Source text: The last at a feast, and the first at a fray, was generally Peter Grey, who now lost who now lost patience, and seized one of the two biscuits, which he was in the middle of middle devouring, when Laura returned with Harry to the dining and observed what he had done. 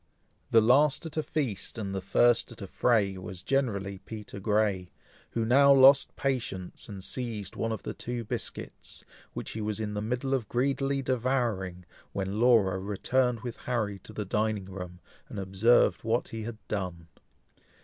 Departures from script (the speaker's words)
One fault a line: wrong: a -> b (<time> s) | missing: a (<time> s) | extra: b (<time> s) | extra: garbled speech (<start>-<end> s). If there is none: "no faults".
missing: who now lost (6.2 s)
wrong: middle -> greedily (10.5 s)
extra: room (14.7 s)